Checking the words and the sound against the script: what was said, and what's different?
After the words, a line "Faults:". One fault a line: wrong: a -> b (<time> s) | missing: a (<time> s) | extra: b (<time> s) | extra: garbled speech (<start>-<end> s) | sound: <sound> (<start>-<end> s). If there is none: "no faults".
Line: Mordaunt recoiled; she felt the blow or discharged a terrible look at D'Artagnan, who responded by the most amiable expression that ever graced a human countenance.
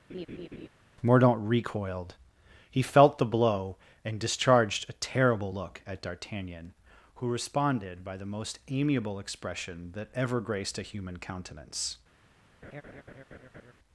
Mordaunt recoiled; he felt the blow and discharged a terrible look at D'Artagnan, who responded by the most amiable expression that ever graced a human countenance.
Faults:
sound: laugh (0.1-0.7 s)
wrong: she -> he (2.7 s)
wrong: or -> and (4.0 s)
sound: laugh (12.6-13.7 s)